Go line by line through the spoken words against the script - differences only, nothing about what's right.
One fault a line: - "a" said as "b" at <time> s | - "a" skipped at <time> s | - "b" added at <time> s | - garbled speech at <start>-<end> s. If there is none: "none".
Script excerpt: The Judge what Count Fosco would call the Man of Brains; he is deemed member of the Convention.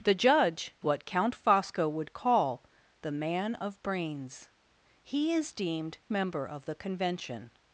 none